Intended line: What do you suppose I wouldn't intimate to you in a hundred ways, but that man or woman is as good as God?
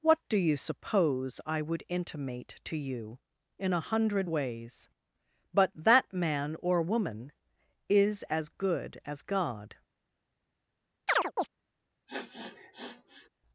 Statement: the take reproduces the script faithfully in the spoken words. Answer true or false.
false